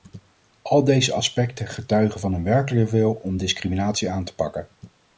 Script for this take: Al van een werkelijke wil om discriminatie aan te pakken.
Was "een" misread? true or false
false